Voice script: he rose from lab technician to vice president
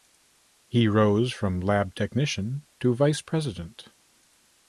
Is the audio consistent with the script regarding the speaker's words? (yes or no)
yes